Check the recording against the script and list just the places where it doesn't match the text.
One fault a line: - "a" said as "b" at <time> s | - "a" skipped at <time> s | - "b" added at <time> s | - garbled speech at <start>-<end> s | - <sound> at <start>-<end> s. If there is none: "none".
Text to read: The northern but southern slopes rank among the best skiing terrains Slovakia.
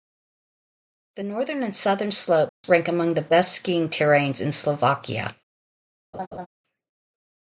- "but" said as "and" at 1.6 s
- dropout at 2.5-2.6 s
- "in" added at 4.4 s
- laugh at 6.1-6.5 s